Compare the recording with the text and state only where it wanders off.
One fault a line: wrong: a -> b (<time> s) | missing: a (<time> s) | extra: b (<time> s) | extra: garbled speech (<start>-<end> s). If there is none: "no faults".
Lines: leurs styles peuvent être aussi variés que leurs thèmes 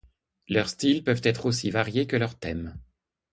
no faults